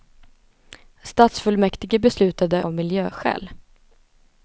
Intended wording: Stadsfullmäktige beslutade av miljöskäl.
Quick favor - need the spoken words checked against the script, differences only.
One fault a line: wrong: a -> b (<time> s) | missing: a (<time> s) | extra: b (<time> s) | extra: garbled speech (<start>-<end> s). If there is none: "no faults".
no faults